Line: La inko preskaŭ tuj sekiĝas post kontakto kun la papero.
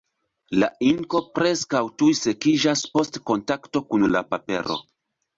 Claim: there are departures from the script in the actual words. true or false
false